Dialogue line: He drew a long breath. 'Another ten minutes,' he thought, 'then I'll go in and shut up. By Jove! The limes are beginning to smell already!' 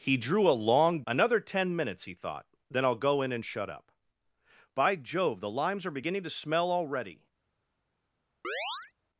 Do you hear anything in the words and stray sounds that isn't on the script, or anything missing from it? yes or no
yes